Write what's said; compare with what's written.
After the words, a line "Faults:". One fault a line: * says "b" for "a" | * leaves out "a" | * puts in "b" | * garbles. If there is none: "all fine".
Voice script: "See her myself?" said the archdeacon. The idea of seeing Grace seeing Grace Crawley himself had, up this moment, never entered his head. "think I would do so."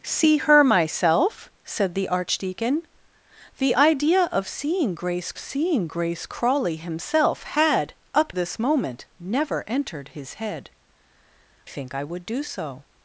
"See her myself?" said the archdeacon. The idea of seeing Grace seeing Grace Crawley himself had, up this moment, never entered his head. "think I would do so."
Faults:
all fine